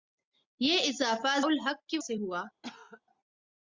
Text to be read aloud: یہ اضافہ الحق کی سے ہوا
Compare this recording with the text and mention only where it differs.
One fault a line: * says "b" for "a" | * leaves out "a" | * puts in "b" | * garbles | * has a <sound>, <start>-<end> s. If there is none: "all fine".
* has a cough, 2.6-3.0 s